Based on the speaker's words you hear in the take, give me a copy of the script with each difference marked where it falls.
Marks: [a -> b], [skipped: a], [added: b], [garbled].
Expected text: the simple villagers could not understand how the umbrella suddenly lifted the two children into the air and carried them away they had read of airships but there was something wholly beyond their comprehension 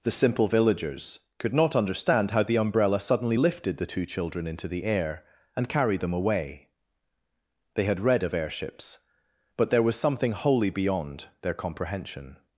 the simple villagers could not understand how the umbrella suddenly lifted the two children into the air and carried them away they had read of airships but there was something wholly beyond their comprehension